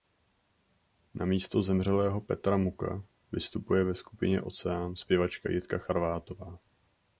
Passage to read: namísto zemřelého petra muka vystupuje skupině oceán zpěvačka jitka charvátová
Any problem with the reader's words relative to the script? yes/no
yes